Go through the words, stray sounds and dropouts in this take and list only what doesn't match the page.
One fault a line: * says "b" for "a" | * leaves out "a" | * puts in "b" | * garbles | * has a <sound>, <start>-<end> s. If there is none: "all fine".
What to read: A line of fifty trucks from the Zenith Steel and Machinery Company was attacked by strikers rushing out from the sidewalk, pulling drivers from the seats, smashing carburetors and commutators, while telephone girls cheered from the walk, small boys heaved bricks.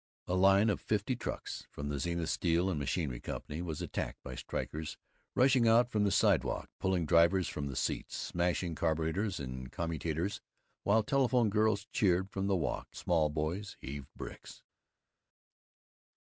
all fine